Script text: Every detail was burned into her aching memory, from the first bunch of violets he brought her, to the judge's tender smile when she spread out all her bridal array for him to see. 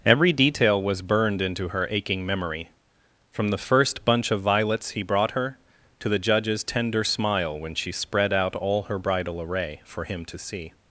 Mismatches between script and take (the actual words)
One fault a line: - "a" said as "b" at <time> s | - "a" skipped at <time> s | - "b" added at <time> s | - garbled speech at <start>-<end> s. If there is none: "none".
none